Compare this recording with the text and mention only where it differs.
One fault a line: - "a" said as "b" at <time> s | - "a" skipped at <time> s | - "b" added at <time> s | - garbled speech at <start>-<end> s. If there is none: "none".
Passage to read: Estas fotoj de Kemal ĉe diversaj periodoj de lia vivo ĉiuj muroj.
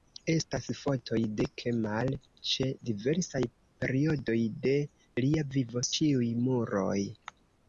none